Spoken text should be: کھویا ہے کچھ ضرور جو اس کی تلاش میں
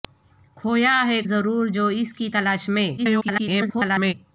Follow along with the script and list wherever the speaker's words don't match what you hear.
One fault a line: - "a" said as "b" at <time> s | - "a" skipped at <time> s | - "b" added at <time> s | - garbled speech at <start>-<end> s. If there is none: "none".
- "کچھ" skipped at 1.2 s
- garbled speech at 3.0-4.1 s